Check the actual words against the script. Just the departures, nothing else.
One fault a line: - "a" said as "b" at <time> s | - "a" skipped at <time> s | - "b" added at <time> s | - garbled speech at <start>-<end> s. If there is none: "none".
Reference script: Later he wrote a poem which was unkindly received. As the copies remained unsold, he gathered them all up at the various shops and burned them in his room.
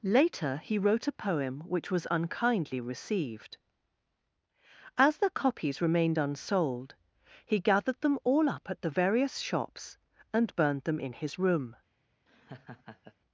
none